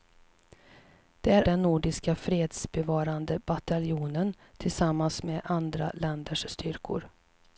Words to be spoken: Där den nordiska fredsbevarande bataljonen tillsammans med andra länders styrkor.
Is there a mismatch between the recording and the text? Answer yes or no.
no